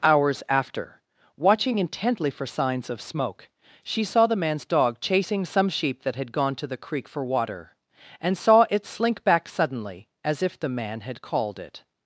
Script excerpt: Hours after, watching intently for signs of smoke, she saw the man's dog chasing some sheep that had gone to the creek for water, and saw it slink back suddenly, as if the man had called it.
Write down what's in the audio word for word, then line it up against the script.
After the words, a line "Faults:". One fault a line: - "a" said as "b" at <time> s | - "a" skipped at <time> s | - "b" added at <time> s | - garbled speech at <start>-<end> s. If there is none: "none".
Hours after, watching intently for signs of smoke, she saw the man's dog chasing some sheep that had gone to the creek for water, and saw it slink back suddenly, as if the man had called it.
Faults:
none